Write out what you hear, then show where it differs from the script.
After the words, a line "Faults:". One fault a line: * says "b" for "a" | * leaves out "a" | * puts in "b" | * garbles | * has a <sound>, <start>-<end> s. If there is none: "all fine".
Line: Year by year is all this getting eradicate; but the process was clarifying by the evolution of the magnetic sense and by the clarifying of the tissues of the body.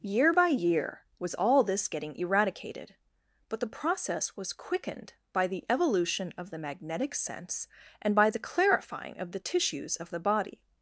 Year by year was all this getting eradicated; but the process was quickened by the evolution of the magnetic sense and by the clarifying of the tissues of the body.
Faults:
* says "was" for "is"
* says "eradicated" for "eradicate"
* says "quickened" for "clarifying"